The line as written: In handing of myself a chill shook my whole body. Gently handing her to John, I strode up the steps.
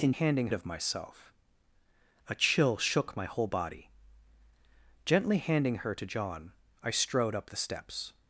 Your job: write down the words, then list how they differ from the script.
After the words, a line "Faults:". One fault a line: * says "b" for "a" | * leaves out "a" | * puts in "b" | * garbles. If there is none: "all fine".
In handing of myself a chill shook my whole body. Gently handing her to John, I strode up the steps.
Faults:
all fine